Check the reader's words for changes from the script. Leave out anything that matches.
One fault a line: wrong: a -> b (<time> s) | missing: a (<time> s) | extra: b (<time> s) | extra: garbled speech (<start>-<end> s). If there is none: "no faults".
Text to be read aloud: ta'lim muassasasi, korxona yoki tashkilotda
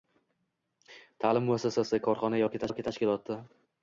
extra: yoki (2.7 s)